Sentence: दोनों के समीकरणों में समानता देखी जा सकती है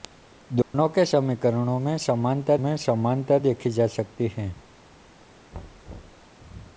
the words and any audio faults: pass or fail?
fail